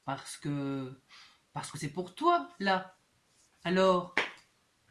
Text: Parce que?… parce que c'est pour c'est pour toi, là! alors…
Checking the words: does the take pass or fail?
fail